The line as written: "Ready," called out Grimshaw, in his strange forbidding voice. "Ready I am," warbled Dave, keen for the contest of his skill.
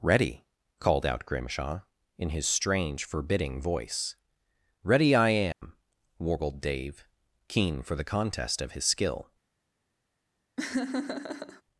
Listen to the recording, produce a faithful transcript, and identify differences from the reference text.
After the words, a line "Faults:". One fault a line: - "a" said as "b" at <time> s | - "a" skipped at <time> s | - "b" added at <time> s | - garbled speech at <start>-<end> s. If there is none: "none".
"Ready," called out Grimshaw, in his strange forbidding voice. "Ready I am," warbled Dave, keen for the contest of his skill.
Faults:
none